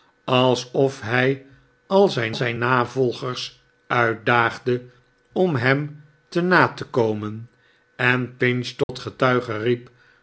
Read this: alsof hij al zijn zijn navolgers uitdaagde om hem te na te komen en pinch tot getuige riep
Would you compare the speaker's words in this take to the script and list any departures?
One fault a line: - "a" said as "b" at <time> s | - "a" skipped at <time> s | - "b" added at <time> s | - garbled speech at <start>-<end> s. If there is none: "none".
none